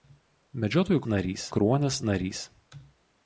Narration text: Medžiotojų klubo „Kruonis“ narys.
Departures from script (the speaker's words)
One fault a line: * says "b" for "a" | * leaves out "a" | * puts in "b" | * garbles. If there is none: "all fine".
* says "narys" for "klubo"